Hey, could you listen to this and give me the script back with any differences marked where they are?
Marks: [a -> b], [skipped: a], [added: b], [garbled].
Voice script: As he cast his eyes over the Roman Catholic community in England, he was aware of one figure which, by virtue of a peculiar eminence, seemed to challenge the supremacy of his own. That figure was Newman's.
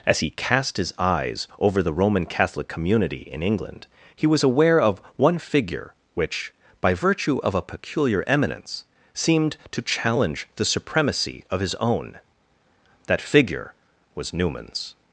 As he cast his eyes over the Roman Catholic community in England, he was aware of one figure which, by virtue of a peculiar eminence, seemed to challenge the supremacy of his own. That figure was Newman's.